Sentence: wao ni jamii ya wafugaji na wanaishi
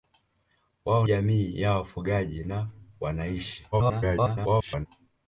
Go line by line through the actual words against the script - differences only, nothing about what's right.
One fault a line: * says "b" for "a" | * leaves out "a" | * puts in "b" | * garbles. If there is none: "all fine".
* leaves out "ni"
* garbles